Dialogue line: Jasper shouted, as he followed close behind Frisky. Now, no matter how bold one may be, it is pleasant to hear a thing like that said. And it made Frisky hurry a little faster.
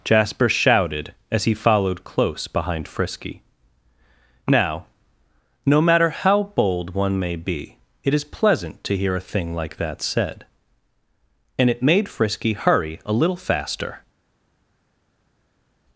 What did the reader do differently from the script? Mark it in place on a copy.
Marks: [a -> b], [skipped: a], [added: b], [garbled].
Jasper shouted, as he followed close behind Frisky. Now, no matter how bold one may be, it is pleasant to hear a thing like that said. And it made Frisky hurry a little faster.